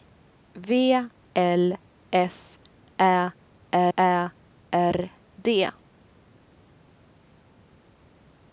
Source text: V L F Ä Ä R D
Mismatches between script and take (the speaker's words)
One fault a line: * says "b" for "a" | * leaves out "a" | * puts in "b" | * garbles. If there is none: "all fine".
all fine